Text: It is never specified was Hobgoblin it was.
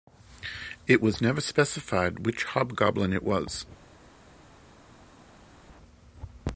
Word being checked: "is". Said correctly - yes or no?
no